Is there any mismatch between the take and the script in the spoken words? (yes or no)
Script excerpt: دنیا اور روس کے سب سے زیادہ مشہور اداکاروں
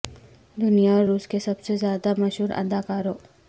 no